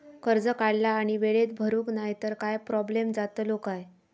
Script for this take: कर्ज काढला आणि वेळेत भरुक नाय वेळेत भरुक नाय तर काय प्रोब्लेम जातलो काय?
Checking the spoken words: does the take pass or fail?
fail